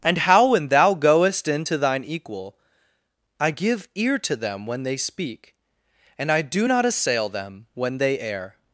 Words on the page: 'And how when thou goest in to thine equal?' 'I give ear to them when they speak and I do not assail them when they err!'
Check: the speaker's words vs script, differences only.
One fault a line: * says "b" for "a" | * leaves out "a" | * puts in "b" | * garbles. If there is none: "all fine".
all fine